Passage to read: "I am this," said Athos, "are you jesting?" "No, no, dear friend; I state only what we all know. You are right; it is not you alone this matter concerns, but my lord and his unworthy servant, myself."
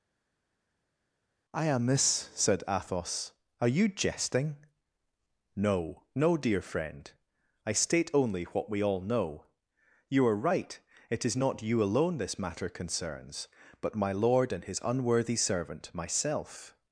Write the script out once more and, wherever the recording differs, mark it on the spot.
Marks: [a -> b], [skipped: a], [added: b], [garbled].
"I am this," said Athos, "are you jesting?" "No, no, dear friend; I state only what we all know. You are right; it is not you alone this matter concerns, but my lord and his unworthy servant, myself."